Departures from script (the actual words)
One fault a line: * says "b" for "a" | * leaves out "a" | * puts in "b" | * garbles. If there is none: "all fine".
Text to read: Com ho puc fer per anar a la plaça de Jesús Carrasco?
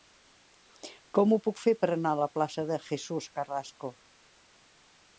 all fine